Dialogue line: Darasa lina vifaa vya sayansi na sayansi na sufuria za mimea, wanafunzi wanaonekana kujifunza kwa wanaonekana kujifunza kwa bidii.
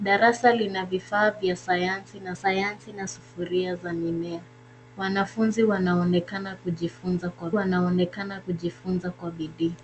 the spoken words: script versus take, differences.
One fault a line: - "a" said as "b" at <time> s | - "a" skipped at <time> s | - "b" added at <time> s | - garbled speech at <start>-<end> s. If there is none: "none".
none